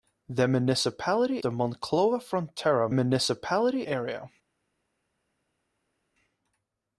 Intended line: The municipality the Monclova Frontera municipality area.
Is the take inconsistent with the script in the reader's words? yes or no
no